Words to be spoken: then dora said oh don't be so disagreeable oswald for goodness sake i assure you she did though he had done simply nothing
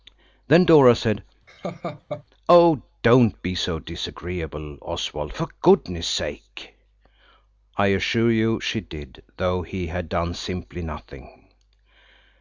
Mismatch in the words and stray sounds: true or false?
true